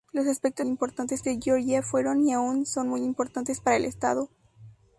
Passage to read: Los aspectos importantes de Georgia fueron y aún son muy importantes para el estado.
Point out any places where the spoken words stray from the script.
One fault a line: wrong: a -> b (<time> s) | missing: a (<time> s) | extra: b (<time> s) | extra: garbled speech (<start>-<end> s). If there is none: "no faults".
no faults